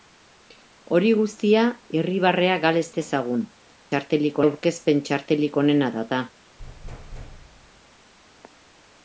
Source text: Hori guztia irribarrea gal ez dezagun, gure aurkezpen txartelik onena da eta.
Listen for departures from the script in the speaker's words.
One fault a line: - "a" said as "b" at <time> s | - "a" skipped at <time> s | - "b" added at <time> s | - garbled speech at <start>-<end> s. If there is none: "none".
- "gure" said as "txartelik" at 3.9 s